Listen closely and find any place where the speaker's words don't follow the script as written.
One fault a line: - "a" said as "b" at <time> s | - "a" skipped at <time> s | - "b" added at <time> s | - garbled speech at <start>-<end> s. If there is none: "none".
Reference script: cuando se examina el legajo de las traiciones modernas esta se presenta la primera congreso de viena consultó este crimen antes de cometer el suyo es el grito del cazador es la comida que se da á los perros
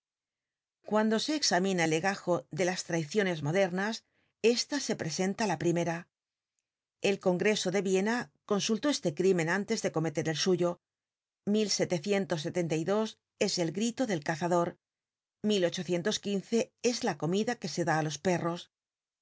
- "el" added at 7.0 s